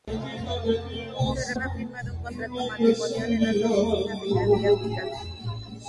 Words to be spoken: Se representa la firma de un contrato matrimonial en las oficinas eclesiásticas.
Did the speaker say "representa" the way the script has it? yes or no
no